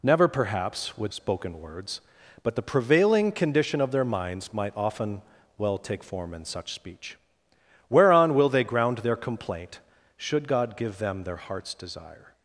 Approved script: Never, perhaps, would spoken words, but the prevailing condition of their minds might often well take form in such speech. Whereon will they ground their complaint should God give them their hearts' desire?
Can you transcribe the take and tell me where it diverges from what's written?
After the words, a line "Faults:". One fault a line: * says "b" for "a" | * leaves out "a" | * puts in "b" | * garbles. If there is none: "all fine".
Never, perhaps, would spoken words, but the prevailing condition of their minds might often well take form in such speech. Whereon will they ground their complaint should God give them their hearts' desire?
Faults:
all fine